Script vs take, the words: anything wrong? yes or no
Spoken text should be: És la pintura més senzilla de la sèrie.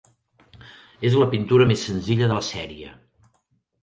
no